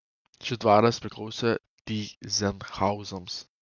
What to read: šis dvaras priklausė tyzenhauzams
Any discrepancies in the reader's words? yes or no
no